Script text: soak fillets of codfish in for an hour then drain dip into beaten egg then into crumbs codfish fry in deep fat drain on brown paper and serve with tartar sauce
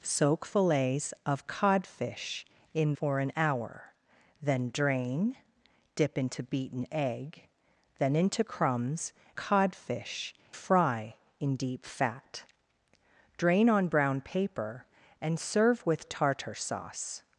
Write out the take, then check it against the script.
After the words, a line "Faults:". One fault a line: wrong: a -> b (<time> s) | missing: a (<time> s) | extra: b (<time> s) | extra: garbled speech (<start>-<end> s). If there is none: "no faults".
soak fillets of codfish in for an hour then drain dip into beaten egg then into crumbs codfish fry in deep fat drain on brown paper and serve with tartar sauce
Faults:
no faults